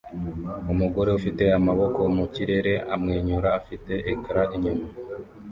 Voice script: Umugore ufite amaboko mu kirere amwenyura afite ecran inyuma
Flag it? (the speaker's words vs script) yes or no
no